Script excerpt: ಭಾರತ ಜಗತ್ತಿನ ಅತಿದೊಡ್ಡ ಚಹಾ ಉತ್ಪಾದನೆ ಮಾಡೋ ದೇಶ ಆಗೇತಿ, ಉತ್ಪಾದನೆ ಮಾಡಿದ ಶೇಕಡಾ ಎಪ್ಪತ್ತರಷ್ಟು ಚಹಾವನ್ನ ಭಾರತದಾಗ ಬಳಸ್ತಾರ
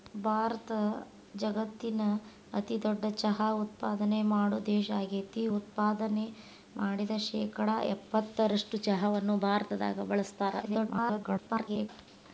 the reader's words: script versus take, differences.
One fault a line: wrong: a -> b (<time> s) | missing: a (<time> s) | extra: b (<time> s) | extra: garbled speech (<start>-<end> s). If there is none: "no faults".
extra: garbled speech (10.6-11.9 s)